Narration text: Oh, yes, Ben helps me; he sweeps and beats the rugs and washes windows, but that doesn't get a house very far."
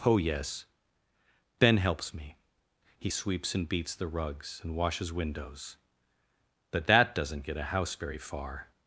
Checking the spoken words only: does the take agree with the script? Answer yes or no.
yes